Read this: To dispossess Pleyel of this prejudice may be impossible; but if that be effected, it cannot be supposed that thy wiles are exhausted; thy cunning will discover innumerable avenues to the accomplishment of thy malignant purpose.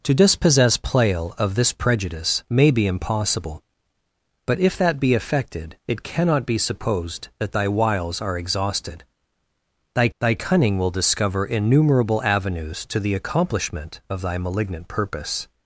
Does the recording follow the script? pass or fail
fail